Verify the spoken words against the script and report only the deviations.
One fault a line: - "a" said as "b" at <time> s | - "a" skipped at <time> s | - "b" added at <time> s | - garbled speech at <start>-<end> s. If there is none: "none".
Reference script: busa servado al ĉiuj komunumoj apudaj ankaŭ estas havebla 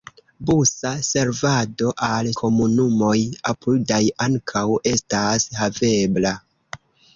- "ĉiuj" skipped at 2.3 s